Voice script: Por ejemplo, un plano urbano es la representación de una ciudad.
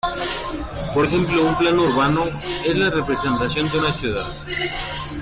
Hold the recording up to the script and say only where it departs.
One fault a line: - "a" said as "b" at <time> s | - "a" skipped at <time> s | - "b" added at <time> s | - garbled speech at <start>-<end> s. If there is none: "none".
none